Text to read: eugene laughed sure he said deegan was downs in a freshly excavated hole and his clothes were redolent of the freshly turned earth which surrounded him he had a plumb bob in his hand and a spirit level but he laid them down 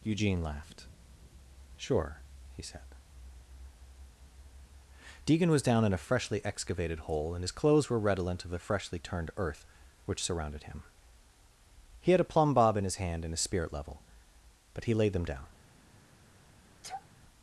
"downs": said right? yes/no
no